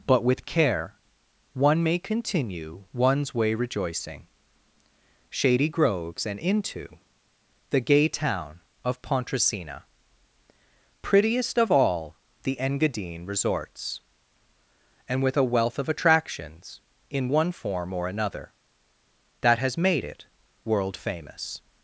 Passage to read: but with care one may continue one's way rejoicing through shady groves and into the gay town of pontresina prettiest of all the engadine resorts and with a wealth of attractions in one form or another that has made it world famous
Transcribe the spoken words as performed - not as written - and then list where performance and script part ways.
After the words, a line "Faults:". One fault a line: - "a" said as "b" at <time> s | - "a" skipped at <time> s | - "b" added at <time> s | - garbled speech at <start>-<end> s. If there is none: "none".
but with care one may continue one's way rejoicing shady groves and into the gay town of pontresina prettiest of all the engadine resorts and with a wealth of attractions in one form or another that has made it world famous
Faults:
- "through" skipped at 4.3 s